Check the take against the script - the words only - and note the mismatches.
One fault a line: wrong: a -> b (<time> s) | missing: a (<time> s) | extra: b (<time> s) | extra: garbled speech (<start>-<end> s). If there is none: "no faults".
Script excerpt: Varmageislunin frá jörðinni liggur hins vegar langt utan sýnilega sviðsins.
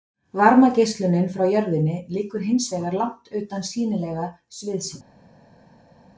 no faults